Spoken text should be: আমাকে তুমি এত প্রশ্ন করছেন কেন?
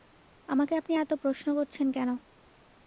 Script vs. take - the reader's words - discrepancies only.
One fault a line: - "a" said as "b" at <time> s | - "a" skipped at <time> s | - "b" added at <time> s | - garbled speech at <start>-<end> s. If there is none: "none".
- "তুমি" said as "আপনি" at 0.8 s